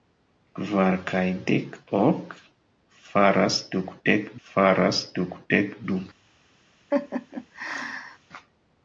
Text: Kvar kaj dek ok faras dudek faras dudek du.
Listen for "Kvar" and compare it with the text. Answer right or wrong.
right